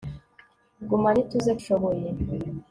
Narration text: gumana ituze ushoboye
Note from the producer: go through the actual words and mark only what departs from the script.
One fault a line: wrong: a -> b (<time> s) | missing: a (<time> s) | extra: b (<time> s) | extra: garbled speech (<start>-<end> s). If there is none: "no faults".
no faults